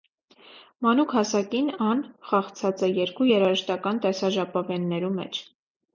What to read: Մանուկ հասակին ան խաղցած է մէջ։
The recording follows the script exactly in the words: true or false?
false